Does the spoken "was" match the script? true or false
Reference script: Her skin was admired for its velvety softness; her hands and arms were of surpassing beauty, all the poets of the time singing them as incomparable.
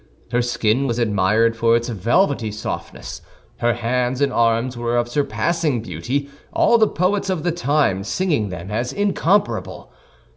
true